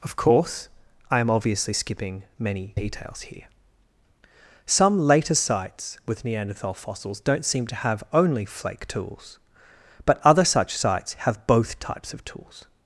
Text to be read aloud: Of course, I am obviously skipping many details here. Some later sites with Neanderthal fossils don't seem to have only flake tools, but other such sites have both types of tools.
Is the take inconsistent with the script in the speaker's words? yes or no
no